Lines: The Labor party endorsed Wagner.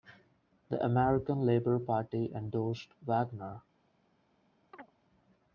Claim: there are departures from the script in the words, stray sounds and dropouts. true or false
true